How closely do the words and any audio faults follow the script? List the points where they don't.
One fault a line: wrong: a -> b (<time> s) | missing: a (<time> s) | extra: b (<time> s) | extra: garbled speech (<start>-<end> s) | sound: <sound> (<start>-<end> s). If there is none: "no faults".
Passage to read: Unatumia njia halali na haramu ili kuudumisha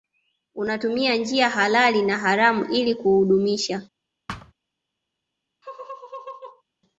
sound: thud (4.3-4.5 s)
sound: laugh (5.6-6.6 s)